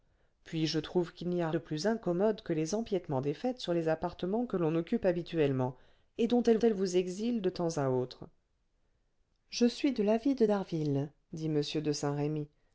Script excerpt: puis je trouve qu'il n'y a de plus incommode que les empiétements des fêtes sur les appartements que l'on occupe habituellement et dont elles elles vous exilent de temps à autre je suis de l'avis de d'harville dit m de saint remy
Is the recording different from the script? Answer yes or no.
no